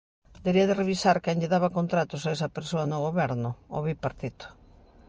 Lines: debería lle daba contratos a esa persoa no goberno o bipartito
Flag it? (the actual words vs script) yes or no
yes